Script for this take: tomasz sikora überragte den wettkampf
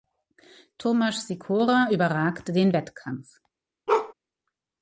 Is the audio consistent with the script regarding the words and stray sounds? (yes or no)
no